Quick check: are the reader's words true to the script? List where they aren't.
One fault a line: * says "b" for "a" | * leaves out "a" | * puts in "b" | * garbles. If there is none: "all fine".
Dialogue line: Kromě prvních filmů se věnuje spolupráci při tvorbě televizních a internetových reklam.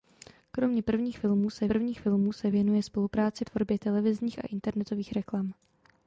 * puts in "prvních filmů se"
* leaves out "při"